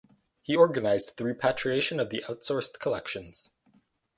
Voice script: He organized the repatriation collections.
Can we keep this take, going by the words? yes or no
no